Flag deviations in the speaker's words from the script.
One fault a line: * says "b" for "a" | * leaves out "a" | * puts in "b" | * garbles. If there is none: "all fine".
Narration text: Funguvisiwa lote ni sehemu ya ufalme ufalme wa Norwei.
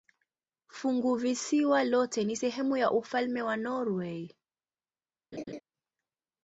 * leaves out "ufalme"